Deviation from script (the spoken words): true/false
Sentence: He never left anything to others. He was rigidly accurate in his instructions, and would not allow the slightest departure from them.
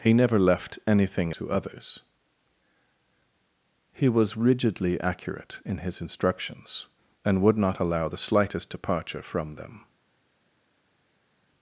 false